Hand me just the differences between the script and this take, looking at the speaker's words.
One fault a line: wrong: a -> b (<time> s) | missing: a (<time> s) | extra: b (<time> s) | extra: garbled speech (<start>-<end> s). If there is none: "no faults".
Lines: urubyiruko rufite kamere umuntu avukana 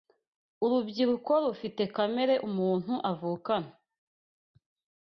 no faults